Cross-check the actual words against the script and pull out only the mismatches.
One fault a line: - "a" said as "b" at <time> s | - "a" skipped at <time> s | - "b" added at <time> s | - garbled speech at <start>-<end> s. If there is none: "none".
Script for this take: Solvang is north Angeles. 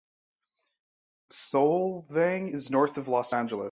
- "of Los" added at 3.0 s